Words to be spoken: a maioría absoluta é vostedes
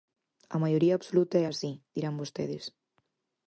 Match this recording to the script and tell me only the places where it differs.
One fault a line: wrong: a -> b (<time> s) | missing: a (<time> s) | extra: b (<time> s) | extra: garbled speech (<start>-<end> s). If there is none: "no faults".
extra: así dirán (1.4 s)